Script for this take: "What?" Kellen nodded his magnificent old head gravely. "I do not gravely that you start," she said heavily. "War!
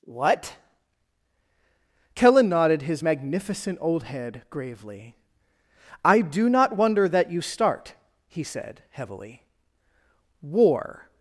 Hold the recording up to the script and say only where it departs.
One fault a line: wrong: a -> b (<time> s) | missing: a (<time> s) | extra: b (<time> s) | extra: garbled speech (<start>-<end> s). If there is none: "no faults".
wrong: gravely -> wonder (6.8 s)
wrong: she -> he (8.3 s)